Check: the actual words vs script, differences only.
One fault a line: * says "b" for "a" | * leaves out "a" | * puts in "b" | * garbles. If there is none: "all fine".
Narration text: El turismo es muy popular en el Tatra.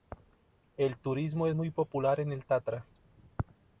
all fine